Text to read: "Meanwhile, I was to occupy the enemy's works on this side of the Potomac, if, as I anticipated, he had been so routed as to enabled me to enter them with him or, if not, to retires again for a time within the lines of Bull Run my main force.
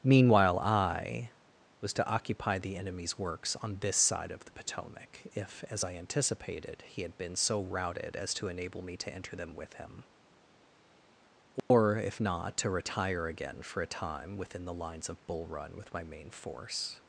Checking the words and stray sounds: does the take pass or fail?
fail